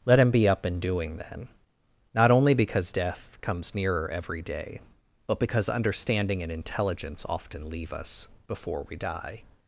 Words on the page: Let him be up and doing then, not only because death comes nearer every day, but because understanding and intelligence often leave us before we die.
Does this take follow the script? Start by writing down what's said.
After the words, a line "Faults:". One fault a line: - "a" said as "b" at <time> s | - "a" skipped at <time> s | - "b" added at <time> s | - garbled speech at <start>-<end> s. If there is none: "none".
Let him be up and doing then, not only because death comes nearer every day, but because understanding and intelligence often leave us before we die.
Faults:
none